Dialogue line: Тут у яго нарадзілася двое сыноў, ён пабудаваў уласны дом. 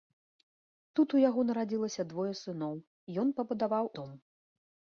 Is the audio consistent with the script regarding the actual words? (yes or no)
no